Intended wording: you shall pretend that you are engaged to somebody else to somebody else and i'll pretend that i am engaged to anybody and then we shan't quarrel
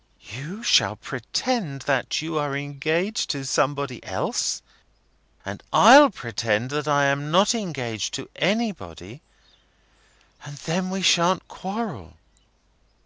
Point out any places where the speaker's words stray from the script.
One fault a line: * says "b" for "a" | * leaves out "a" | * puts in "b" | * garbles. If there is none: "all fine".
* leaves out "to somebody else"
* puts in "not"